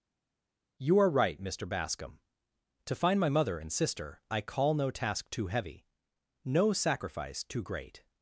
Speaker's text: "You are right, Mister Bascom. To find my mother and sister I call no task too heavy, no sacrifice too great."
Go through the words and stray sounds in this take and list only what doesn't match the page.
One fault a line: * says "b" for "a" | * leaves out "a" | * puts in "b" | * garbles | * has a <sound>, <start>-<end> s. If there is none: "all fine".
all fine